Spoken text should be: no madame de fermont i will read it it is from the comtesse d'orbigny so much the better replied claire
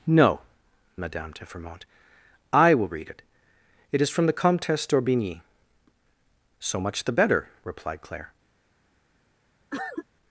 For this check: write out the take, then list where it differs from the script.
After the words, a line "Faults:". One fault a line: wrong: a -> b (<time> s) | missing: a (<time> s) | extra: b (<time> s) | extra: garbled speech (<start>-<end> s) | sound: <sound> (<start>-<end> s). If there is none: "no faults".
no madame de fermont i will read it it is from the comtesse d'orbigny so much the better replied claire
Faults:
sound: cough (9.7-10.1 s)